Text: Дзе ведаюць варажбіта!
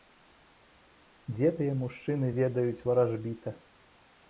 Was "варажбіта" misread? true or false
false